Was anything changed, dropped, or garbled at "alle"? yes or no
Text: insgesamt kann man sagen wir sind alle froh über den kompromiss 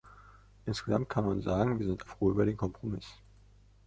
yes